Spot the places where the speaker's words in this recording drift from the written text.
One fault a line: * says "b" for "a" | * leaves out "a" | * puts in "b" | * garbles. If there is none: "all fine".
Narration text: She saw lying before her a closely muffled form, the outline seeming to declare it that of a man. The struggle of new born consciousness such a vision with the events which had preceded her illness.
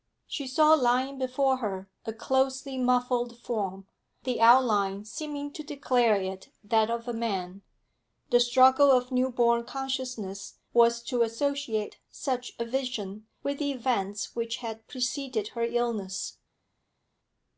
* puts in "was to associate"